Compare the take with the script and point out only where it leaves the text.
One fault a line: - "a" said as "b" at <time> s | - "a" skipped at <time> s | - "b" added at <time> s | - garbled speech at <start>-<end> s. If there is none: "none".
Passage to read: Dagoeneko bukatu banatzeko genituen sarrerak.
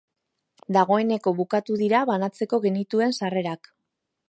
- "dira" added at 1.8 s